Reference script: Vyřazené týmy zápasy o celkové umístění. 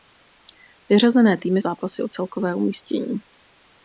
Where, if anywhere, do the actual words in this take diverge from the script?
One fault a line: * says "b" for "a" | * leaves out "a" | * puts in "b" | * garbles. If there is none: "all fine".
all fine